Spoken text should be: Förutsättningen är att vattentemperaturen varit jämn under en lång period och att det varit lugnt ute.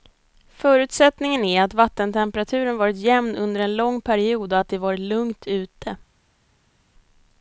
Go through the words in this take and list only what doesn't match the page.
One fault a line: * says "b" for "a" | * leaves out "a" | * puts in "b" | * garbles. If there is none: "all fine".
all fine